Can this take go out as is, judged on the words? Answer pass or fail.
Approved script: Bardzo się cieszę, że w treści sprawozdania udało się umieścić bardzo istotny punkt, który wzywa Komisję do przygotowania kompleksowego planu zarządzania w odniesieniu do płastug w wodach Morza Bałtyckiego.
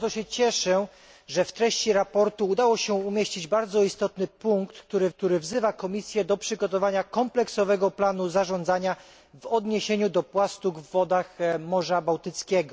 fail